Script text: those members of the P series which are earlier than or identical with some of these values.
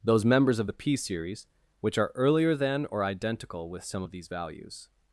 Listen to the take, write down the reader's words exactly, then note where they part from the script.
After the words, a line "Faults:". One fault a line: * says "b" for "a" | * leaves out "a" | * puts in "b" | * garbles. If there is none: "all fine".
those members of the P series which are earlier than or identical with some of these values.
Faults:
all fine